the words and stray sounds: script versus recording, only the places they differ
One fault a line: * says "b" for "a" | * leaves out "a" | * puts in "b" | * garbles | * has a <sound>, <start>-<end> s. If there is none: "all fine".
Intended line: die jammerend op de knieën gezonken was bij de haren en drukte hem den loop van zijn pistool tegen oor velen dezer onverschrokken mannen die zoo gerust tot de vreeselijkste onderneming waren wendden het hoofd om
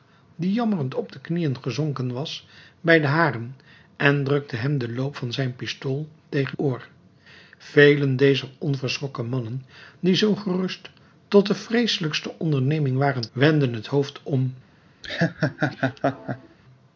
* has a laugh, 15.0-16.6 s